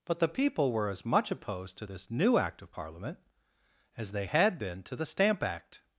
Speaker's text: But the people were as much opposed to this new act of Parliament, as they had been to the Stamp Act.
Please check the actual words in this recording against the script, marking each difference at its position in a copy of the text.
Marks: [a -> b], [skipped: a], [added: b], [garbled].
But the people were as much opposed to this new act of Parliament, as they had been to the Stamp Act.